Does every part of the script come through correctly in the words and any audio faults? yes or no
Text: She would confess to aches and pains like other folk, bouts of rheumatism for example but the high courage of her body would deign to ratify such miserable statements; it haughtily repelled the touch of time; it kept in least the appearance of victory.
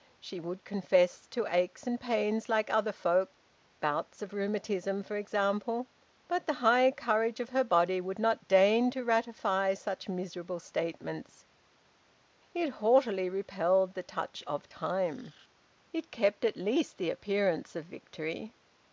no